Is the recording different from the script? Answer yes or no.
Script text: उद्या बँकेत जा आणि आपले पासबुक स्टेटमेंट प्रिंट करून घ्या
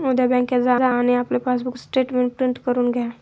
yes